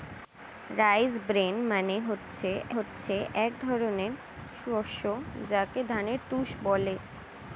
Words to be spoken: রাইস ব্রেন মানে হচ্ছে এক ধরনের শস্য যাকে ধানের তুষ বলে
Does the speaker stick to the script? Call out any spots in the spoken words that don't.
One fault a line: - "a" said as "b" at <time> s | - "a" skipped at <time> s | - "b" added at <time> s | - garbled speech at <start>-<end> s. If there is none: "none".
- "হচ্ছে" added at 2.7 s